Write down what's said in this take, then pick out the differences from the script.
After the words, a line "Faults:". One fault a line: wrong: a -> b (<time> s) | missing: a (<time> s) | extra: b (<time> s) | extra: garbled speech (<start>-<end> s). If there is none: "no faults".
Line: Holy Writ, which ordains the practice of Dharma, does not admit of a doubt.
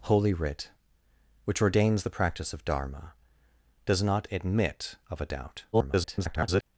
Holy Writ, which ordains the practice of Dharma, does not admit of a doubt. [garbled]
Faults:
extra: garbled speech (5.7-6.6 s)